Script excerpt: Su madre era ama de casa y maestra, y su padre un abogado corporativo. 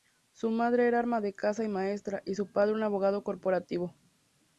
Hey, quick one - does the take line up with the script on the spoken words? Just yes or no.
yes